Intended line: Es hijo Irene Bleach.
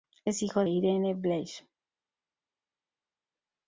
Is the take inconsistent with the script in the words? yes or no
no